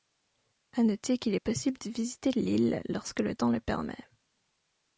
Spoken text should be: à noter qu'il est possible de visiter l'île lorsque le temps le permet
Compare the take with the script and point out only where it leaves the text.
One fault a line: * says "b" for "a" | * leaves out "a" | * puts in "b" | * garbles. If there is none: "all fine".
all fine